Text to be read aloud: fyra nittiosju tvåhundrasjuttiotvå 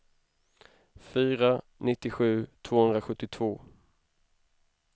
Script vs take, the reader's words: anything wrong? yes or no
no